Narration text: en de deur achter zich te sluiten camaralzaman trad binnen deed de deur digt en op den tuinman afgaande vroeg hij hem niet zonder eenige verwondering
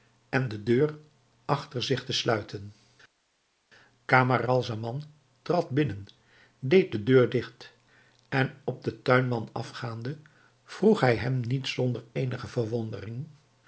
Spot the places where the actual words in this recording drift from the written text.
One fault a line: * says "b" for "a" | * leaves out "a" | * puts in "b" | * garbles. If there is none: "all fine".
all fine